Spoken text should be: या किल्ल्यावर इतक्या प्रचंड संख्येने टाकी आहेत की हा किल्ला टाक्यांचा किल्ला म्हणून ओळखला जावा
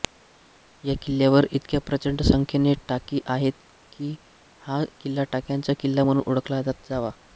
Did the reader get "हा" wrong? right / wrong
right